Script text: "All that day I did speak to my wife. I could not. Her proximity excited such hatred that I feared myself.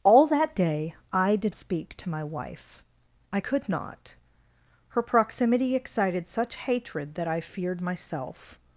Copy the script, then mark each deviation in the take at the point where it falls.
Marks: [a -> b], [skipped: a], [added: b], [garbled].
"All that day I did speak to my wife. I could not. Her proximity excited such hatred that I feared myself.